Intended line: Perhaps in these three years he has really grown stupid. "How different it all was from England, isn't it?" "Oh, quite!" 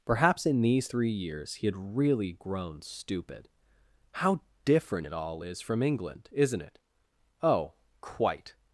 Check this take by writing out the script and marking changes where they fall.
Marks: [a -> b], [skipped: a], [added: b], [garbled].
Perhaps in these three years he [has -> had] really grown stupid. "How different it all [was -> is] from England, isn't it?" "Oh, quite!"